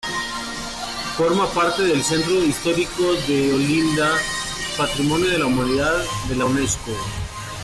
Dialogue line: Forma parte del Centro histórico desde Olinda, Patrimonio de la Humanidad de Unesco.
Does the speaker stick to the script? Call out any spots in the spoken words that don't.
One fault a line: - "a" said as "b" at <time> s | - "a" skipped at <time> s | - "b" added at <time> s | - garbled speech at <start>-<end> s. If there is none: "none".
- "desde" said as "de" at 3.3 s
- "la" added at 6.4 s